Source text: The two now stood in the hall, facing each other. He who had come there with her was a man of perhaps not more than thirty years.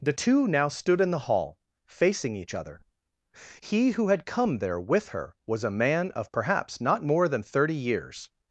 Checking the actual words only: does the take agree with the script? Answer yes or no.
yes